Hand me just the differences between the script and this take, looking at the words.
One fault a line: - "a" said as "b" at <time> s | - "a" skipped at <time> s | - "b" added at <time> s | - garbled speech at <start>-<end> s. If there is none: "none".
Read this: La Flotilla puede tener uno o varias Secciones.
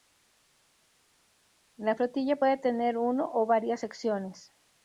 none